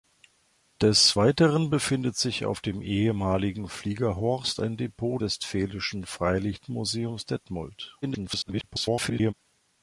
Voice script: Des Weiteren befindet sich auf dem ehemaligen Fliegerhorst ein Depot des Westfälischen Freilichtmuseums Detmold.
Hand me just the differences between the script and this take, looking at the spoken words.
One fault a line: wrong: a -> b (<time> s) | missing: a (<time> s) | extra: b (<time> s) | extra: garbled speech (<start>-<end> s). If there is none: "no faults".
missing: des (5.2 s)
extra: garbled speech (8.0-9.3 s)